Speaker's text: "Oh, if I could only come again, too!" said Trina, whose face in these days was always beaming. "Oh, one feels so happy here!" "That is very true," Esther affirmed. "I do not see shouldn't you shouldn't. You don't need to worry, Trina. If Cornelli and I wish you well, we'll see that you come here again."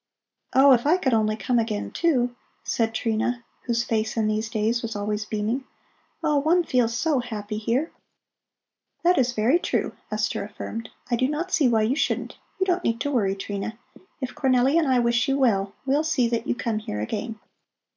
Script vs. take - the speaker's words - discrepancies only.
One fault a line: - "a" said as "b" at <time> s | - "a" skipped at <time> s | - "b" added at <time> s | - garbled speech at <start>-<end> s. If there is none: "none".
- "shouldn't" said as "why" at 11.7 s